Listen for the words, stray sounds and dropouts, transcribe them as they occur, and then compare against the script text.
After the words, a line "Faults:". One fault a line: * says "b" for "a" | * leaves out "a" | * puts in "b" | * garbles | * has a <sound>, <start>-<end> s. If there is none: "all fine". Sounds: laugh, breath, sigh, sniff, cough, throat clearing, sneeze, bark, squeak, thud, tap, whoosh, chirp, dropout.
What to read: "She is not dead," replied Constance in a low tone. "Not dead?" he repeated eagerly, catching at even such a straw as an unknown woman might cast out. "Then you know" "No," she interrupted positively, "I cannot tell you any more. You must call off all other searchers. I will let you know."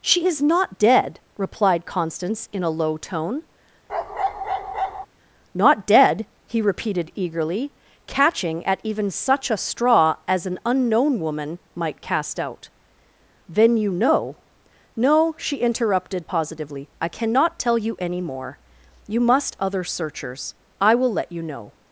"She is not dead," replied Constance in a low tone. "Not dead?" he repeated eagerly, catching at even such a straw as an unknown woman might cast out. "Then you know" "No," she interrupted positively, "I cannot tell you any more. You must other searchers. I will let you know."
Faults:
* has a bark, 3.9-5.1 s
* leaves out "call off all"